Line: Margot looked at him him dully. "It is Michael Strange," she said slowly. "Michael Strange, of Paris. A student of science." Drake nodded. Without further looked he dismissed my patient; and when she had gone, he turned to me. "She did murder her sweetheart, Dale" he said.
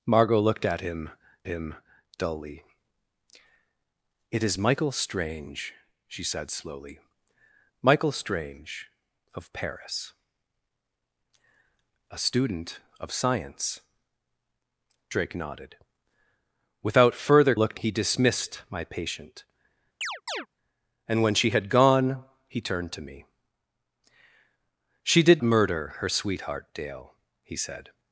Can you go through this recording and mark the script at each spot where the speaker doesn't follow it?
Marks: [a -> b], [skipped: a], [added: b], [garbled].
Margot looked at him him dully. "It is Michael Strange," she said slowly. "Michael Strange, of Paris. A student of science." Drake nodded. Without further looked he dismissed my patient; and when she had gone, he turned to me. "She did murder her sweetheart, Dale" he said.